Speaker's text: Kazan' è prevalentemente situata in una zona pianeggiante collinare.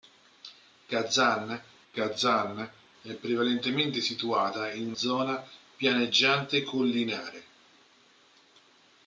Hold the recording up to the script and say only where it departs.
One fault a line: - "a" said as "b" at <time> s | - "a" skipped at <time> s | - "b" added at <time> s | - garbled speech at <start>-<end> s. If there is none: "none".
- "kazan" added at 1.9 s
- "una" skipped at 4.9 s